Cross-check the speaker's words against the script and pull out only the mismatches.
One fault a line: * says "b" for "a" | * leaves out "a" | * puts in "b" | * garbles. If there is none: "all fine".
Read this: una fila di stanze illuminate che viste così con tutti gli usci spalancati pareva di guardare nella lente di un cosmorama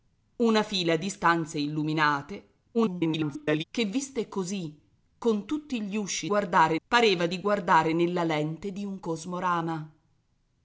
* garbles
* says "guardare" for "spalancati"